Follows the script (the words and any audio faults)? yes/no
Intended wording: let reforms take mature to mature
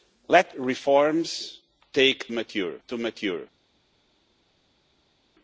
yes